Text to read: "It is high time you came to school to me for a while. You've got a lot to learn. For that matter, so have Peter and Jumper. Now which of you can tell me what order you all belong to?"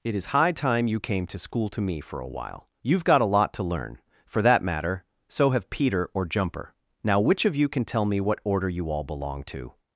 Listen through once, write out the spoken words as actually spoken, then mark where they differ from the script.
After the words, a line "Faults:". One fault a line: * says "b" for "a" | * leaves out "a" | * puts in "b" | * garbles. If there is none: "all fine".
"It is high time you came to school to me for a while. You've got a lot to learn. For that matter, so have Peter or Jumper. Now which of you can tell me what order you all belong to?"
Faults:
* says "or" for "and"